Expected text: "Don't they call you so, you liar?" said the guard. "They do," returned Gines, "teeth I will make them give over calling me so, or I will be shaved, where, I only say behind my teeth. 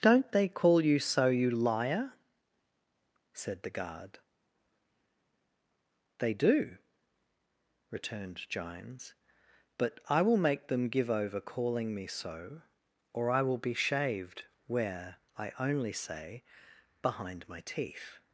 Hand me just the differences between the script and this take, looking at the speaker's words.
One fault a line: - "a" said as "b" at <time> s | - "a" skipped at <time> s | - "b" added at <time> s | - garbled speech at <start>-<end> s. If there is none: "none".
- "teeth" said as "but" at 9.8 s